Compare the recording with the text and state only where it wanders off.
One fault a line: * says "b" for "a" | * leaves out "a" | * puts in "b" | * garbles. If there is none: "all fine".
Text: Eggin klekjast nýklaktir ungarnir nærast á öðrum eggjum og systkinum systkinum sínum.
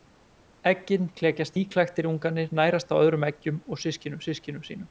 all fine